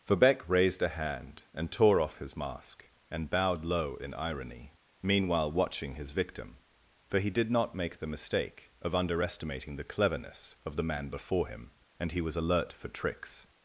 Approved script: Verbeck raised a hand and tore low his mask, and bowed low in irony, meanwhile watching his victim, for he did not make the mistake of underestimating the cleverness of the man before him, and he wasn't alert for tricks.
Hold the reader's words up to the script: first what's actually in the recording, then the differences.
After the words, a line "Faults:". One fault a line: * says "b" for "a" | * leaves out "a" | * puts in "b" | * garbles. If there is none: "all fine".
Verbeck raised a hand and tore off his mask, and bowed low in irony, meanwhile watching his victim, for he did not make the mistake of underestimating the cleverness of the man before him, and he was alert for tricks.
Faults:
* says "off" for "low"
* says "was" for "wasn't"